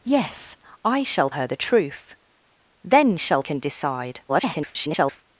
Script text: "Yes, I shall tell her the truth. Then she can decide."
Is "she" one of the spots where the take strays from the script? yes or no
yes